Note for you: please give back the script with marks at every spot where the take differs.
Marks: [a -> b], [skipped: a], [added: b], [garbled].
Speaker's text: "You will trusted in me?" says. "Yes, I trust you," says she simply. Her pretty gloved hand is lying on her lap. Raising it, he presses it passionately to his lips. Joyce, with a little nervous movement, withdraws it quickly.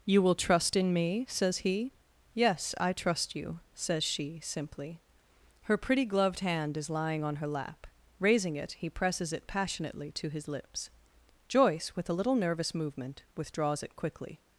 "You will [trusted -> trust] in me?" says. [added: he] "Yes, I trust you," says she simply. Her pretty gloved hand is lying on her lap. Raising it, he presses it passionately to his lips. Joyce, with a little nervous movement, withdraws it quickly.